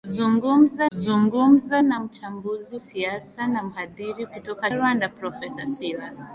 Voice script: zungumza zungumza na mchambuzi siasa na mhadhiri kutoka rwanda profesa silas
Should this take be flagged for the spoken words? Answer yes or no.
no